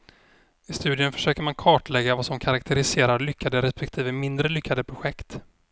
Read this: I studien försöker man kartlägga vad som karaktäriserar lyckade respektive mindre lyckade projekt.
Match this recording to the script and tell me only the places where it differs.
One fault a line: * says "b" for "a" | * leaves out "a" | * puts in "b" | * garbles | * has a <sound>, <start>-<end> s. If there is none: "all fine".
all fine